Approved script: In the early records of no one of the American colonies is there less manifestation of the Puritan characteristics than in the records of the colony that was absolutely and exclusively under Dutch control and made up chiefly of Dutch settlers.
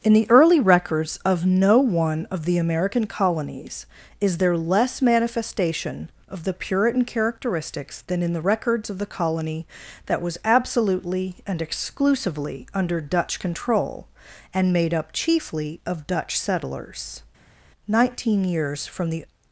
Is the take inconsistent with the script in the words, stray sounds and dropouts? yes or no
yes